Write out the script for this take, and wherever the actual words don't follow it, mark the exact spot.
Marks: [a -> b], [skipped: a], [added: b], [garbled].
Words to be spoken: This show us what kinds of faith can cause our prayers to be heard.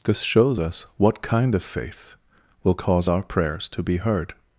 This [show -> shows] us what [kinds -> kind] of faith [can -> will] cause our prayers to be heard.